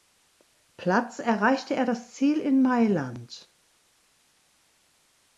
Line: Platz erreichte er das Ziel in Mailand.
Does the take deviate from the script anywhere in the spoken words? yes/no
no